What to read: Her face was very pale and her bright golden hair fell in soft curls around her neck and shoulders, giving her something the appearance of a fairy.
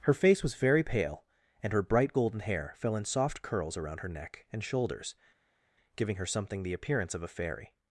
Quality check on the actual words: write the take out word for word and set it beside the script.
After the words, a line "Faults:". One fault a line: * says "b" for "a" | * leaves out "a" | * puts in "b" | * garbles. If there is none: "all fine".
Her face was very pale and her bright golden hair fell in soft curls around her neck and shoulders, giving her something the appearance of a fairy.
Faults:
all fine